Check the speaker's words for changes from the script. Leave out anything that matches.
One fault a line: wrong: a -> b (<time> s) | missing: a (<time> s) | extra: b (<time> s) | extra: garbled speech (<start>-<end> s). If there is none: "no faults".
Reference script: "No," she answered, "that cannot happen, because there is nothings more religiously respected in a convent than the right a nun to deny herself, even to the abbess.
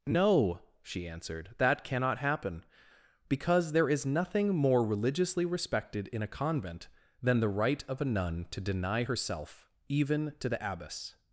wrong: nothings -> nothing (4.0 s)
extra: of (7.9 s)